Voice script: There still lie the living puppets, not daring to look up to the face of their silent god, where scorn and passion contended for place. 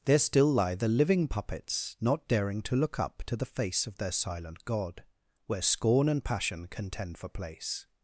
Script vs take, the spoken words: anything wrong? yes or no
yes